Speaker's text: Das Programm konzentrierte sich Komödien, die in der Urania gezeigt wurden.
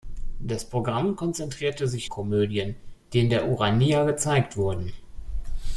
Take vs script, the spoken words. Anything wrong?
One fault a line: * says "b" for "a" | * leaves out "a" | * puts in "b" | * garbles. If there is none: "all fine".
all fine